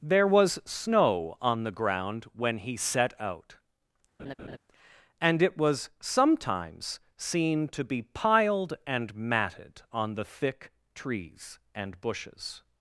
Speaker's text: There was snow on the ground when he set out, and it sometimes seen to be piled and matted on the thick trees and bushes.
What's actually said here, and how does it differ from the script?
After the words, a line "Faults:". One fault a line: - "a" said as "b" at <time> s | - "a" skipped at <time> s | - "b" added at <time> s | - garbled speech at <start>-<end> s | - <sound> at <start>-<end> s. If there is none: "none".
There was snow on the ground when he set out, and it was sometimes seen to be piled and matted on the thick trees and bushes.
Faults:
- laugh at 4.2-4.6 s
- "was" added at 5.6 s